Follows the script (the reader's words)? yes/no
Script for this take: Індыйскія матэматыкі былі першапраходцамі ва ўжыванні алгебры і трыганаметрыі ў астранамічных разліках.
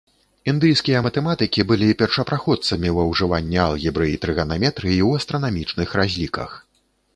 yes